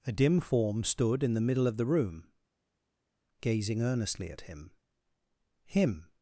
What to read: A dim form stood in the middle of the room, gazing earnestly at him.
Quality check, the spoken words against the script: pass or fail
fail